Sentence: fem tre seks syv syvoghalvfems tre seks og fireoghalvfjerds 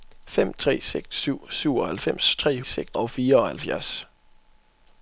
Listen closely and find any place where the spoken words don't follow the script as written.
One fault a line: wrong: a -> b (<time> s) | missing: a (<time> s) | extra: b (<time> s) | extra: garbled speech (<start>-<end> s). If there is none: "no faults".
no faults